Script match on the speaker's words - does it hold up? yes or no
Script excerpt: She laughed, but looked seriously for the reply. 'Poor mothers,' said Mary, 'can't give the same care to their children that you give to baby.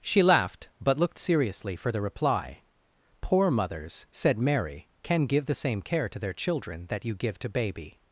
no